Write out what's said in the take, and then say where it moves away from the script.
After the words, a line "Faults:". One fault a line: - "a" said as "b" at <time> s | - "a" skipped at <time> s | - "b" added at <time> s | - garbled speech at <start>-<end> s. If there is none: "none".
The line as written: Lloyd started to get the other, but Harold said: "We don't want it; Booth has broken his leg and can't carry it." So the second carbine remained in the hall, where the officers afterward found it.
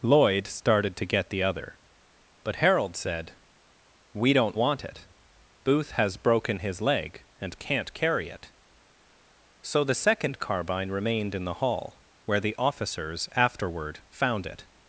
Lloyd started to get the other, but Harold said: "We don't want it; Booth has broken his leg and can't carry it." So the second carbine remained in the hall, where the officers afterward found it.
Faults:
none